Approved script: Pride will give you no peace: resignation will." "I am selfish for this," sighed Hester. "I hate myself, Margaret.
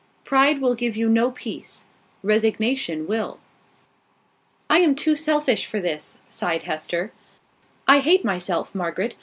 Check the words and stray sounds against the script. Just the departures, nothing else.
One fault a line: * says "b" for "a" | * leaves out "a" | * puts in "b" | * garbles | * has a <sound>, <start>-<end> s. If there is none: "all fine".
* puts in "too"